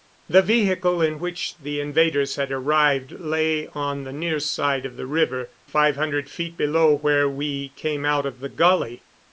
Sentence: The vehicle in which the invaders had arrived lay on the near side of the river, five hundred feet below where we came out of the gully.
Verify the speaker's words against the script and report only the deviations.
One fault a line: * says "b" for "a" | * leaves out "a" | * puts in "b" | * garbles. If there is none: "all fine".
all fine